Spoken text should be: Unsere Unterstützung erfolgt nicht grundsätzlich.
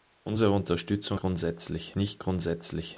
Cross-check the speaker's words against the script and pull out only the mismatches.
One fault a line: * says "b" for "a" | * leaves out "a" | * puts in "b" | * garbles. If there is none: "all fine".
* says "grundsätzlich" for "erfolgt"